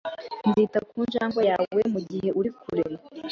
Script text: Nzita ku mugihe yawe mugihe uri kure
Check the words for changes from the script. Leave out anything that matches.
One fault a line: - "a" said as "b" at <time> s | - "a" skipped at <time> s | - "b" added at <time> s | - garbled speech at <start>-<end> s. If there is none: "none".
- "mugihe" said as "njangwe" at 1.1 s